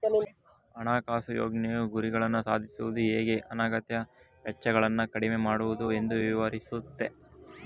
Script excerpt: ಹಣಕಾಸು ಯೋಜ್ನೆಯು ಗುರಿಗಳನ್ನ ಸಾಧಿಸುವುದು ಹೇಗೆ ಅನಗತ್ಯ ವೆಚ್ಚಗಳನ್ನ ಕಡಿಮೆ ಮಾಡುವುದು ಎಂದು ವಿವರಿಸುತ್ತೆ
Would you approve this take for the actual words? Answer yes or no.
yes